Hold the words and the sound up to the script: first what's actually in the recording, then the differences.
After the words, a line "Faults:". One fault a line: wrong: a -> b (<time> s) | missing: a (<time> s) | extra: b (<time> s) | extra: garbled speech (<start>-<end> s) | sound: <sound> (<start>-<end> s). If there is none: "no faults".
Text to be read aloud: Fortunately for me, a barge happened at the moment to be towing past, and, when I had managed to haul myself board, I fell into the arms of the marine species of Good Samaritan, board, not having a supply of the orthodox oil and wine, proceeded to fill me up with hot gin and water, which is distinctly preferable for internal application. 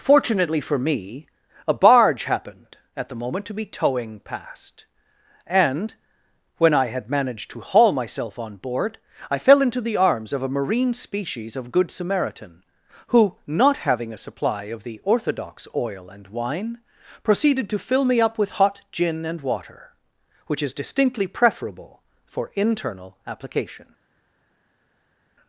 Fortunately for me, a barge happened at the moment to be towing past, and, when I had managed to haul myself on board, I fell into the arms of a marine species of Good Samaritan, who, not having a supply of the orthodox oil and wine, proceeded to fill me up with hot gin and water, which is distinctly preferable for internal application.
Faults:
extra: on (8.4 s)
wrong: the -> a (10.4 s)
wrong: board -> who (13.1 s)